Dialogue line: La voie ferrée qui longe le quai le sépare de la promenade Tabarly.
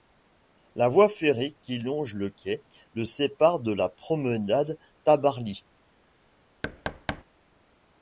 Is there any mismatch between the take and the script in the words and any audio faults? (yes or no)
yes